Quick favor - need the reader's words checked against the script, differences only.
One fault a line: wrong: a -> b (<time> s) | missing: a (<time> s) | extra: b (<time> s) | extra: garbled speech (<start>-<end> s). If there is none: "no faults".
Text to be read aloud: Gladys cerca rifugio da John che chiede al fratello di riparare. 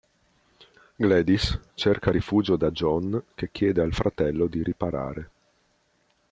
no faults